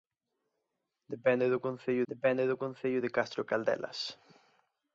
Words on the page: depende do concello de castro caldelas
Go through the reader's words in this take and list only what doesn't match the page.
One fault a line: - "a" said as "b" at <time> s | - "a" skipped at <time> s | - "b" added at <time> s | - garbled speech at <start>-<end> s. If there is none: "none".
- "depende do concello" added at 2.1 s